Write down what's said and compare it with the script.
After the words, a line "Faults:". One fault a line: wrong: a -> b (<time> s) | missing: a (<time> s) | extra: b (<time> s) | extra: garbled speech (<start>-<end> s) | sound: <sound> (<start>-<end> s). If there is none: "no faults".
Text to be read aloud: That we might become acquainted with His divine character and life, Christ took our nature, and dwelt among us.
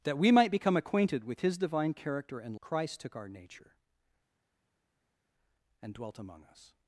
That we might become acquainted with His divine character and Christ took our nature, and dwelt among us.
Faults:
missing: life (2.5 s)